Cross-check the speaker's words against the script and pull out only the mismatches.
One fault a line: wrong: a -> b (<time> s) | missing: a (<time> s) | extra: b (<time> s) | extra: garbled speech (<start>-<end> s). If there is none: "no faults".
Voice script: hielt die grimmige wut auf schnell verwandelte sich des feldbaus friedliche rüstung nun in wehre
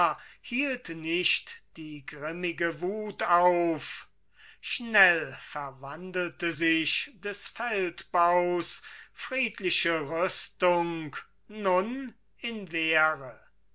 extra: nicht (0.9 s)